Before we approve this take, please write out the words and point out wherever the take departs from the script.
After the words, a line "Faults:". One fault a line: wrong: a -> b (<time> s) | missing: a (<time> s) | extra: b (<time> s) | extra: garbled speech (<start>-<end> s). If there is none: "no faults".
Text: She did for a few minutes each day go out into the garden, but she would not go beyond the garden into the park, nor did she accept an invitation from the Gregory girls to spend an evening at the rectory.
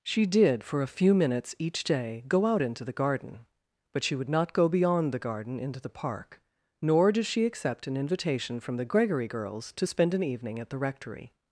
She did for a few minutes each day go out into the garden, but she would not go beyond the garden into the park, nor did she accept an invitation from the Gregory girls to spend an evening at the rectory.
Faults:
no faults